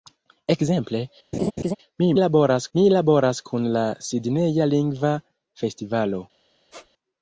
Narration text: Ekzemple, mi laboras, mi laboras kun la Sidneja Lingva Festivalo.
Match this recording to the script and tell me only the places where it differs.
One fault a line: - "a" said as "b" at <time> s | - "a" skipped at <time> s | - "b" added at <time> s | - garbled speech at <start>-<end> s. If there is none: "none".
none